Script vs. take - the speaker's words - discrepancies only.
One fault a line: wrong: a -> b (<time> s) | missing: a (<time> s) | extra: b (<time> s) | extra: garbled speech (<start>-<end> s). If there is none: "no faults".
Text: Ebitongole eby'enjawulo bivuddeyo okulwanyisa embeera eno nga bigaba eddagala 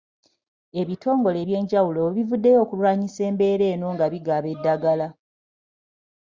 no faults